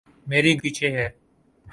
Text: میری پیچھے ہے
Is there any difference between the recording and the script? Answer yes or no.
no